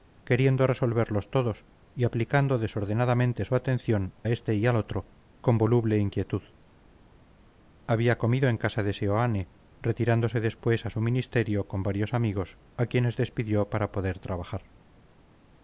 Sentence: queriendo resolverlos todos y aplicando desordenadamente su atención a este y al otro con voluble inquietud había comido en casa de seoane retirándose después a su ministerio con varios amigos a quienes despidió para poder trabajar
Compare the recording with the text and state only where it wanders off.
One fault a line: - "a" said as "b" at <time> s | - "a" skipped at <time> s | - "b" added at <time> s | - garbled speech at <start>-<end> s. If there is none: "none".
- "a" skipped at 4.2 s